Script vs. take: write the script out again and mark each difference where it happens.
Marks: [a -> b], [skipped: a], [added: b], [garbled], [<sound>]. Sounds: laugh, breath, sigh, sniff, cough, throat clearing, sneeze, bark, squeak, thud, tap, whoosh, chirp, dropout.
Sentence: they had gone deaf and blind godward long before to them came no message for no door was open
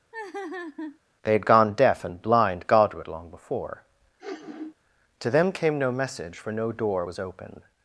[laugh] they had gone deaf and blind godward long before [sniff] to them came no message for no door was open